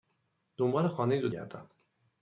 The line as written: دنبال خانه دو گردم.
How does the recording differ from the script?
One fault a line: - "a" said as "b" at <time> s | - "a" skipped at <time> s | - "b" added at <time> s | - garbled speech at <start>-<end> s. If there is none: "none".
none